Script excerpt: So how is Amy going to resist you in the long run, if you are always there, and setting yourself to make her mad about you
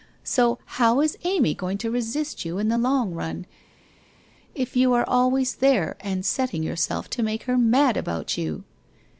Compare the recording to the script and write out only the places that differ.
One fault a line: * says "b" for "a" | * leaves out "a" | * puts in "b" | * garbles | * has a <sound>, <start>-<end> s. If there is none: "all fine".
all fine